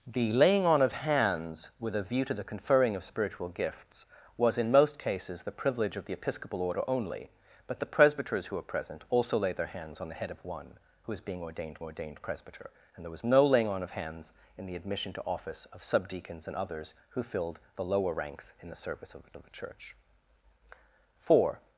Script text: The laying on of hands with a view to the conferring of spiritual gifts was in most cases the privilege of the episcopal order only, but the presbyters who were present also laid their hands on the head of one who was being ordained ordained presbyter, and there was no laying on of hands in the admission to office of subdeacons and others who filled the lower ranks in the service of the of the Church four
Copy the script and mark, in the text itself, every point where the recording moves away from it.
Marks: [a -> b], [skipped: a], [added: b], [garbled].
The laying on of hands with a view to the conferring of spiritual gifts was in most cases the privilege of the episcopal order only, but the presbyters who were present also laid their hands on the head of one who was being ordained ordained presbyter, and there was no laying on of hands in the admission to office of subdeacons and others who filled the lower ranks in the service of the of the Church four